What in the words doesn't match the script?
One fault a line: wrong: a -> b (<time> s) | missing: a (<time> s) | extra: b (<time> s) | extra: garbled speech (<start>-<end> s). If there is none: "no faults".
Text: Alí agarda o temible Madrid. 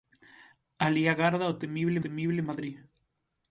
extra: temible (2.0 s)